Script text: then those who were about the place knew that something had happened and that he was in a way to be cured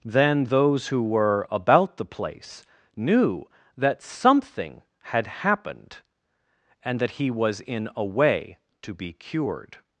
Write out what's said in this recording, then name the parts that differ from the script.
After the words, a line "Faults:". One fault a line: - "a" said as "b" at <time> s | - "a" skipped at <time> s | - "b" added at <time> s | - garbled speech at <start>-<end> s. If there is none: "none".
then those who were about the place knew that something had happened and that he was in a way to be cured
Faults:
none